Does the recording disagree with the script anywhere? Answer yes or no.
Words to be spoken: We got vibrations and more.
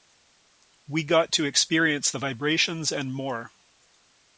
yes